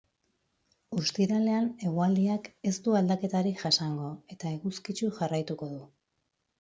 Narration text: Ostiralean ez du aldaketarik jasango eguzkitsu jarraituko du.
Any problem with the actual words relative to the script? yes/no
yes